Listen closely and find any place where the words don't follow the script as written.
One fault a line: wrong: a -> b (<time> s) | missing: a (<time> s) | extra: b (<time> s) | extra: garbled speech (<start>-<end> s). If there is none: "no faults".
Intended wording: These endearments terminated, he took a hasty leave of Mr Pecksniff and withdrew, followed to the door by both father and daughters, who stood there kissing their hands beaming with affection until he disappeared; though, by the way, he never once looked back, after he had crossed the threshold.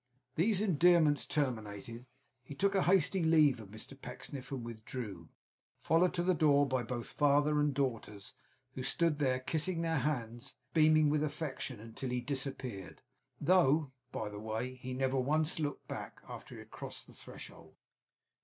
no faults